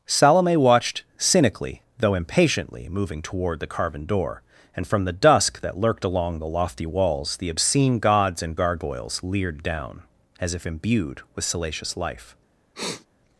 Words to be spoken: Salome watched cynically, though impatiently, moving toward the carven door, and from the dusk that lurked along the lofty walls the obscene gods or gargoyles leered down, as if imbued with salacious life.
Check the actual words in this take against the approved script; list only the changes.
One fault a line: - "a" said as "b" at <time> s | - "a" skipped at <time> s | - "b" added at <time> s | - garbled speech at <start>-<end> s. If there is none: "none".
- "or" said as "and" at 8.4 s